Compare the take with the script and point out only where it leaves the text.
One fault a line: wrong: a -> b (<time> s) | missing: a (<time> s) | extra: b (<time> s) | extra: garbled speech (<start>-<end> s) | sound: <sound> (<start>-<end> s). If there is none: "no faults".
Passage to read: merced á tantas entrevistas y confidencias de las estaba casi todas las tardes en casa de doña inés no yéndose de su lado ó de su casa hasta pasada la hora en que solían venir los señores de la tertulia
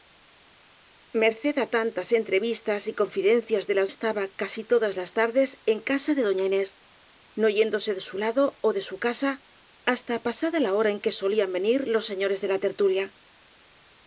no faults